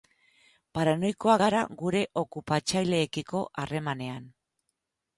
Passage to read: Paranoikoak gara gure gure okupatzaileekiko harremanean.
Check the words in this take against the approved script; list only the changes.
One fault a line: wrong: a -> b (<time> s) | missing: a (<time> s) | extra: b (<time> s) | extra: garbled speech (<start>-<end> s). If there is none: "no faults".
missing: gure (2.0 s)